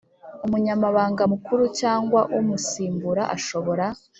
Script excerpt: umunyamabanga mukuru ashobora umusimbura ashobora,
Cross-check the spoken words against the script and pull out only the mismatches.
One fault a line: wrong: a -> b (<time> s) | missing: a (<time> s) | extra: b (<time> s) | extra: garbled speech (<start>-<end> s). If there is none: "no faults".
wrong: ashobora -> cyangwa (1.8 s)